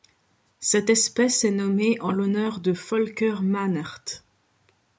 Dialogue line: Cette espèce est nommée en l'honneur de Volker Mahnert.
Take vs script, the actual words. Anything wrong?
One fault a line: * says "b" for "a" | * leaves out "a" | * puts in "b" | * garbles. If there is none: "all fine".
all fine